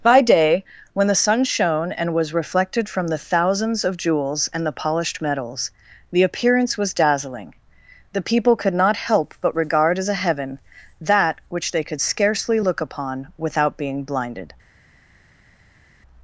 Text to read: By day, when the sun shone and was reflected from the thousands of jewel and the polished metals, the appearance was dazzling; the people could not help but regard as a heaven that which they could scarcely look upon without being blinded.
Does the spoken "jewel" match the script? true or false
false